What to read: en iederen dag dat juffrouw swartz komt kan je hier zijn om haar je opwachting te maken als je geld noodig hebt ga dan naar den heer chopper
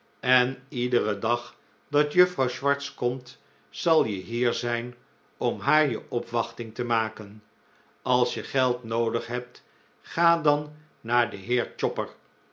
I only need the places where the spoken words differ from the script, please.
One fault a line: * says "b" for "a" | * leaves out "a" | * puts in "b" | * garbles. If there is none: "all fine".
* says "zal" for "kan"